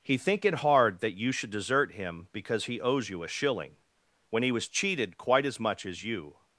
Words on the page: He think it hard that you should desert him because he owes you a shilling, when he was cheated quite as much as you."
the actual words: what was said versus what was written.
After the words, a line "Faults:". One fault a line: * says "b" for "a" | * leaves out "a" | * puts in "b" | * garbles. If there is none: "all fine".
He think it hard that you should desert him because he owes you a shilling, when he was cheated quite as much as you."
Faults:
all fine